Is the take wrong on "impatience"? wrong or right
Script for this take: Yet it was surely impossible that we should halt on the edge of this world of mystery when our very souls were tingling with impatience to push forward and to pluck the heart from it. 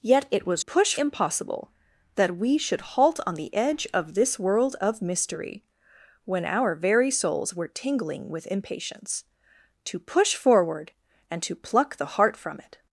right